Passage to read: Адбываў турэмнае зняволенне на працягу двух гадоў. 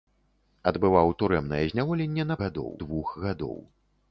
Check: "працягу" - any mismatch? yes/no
yes